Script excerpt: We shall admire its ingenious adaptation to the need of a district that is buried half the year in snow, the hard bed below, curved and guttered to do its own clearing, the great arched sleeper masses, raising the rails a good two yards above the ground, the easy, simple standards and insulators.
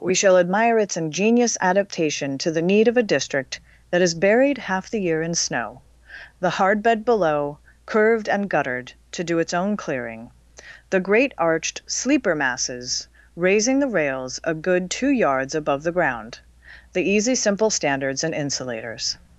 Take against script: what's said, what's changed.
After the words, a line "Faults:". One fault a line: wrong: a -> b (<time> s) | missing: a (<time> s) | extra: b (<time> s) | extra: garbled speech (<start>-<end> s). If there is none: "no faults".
We shall admire its ingenious adaptation to the need of a district that is buried half the year in snow, the hard bed below, curved and guttered to do its own clearing, the great arched sleeper masses, raising the rails a good two yards above the ground, the easy, simple standards and insulators.
Faults:
no faults